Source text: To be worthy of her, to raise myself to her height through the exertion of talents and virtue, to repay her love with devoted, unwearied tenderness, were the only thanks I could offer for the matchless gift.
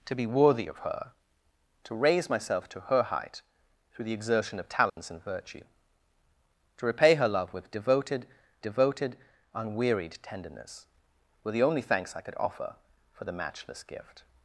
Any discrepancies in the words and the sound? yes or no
yes